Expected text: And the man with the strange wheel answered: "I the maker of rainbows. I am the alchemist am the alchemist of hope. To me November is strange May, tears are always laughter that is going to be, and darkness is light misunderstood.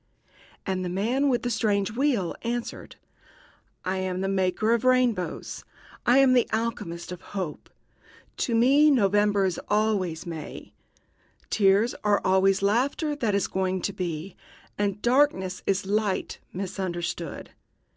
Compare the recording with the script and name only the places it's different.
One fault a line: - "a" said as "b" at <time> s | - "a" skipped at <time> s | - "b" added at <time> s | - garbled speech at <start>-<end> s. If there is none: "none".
- "am" added at 4.0 s
- "am the alchemist" skipped at 7.1 s
- "strange" said as "always" at 9.7 s